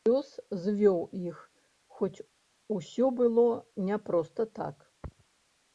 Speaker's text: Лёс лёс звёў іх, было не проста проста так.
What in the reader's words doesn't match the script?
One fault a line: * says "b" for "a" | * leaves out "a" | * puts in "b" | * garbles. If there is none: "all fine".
* leaves out "лёс"
* puts in "хоць усё"
* leaves out "проста"